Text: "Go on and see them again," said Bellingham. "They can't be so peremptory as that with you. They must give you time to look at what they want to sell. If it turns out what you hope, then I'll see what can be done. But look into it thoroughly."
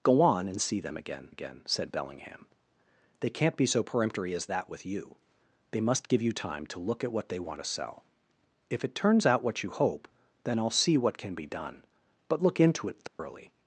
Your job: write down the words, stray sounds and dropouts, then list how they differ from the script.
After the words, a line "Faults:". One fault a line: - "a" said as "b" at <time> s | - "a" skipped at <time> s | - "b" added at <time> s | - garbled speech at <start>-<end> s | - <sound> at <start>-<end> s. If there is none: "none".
"Go on and see them again again," said Bellingham. "They can't be so peremptory as that with you. They must give you time to look at what they want to sell. If it turns out what you hope, then I'll see what can be done. But look into it thoroughly."
Faults:
- "again" added at 1.3 s
- dropout at 13.1-13.2 s